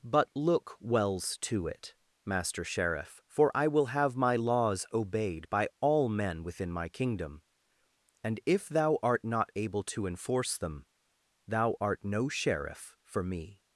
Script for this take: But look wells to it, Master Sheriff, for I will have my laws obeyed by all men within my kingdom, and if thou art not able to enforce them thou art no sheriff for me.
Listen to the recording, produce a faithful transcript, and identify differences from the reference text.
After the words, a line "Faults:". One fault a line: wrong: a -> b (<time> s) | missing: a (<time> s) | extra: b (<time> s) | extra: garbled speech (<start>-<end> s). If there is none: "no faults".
But look wells to it, Master Sheriff, for I will have my laws obeyed by all men within my kingdom, and if thou art not able to enforce them thou art no sheriff for me.
Faults:
no faults